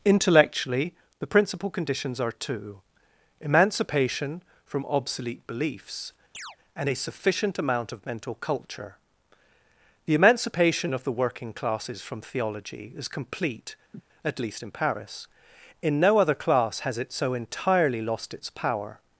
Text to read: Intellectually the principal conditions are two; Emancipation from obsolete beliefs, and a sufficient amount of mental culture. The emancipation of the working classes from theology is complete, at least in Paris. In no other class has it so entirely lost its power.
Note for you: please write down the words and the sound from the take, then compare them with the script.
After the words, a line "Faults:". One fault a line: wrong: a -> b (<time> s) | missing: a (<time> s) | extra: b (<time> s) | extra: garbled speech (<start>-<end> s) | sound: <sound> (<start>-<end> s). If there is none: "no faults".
Intellectually the principal conditions are two; Emancipation from obsolete beliefs, and a sufficient amount of mental culture. The emancipation of the working classes from theology is complete, at least in Paris. In no other class has it so entirely lost its power.
Faults:
sound: chirp (6.3-6.6 s)
sound: sniff (13.9-14.0 s)